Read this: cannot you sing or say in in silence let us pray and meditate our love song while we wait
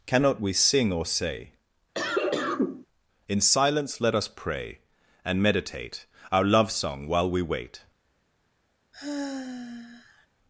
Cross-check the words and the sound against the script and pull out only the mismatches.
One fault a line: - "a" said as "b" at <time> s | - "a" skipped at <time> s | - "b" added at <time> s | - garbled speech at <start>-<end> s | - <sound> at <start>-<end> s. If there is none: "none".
- "you" said as "we" at 0.4 s
- cough at 1.9-2.9 s
- "in" skipped at 3.4 s
- sigh at 8.9-10.3 s